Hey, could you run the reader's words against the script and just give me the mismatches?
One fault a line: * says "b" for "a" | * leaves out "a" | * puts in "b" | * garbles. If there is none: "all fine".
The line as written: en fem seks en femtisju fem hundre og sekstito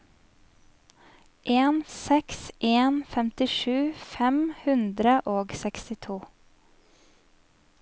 * leaves out "fem"